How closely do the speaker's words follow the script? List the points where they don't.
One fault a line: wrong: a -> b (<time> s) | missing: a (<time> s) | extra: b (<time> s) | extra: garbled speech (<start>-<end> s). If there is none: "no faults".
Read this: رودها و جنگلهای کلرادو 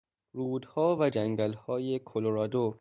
no faults